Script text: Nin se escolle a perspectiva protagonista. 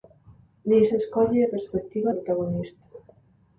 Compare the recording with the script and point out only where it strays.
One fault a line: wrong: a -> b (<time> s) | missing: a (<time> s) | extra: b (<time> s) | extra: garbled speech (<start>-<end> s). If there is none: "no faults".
no faults